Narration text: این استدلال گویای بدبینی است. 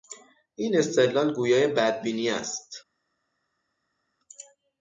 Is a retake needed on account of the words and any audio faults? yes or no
no